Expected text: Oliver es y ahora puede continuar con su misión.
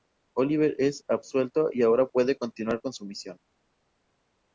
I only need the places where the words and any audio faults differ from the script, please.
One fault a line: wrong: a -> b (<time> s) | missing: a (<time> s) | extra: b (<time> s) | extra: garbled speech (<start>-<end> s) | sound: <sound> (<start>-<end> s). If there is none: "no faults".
extra: absuelto (1.1 s)